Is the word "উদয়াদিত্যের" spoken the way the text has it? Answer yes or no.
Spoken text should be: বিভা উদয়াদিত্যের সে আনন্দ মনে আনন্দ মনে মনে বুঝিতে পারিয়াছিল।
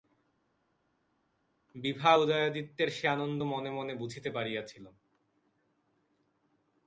yes